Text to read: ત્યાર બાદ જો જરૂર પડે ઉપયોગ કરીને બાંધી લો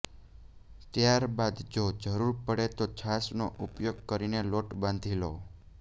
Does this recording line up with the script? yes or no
no